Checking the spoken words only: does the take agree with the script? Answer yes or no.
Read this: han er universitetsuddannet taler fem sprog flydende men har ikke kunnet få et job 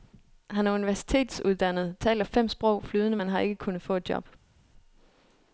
yes